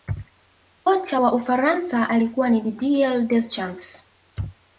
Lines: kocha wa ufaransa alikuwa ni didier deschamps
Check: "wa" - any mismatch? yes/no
no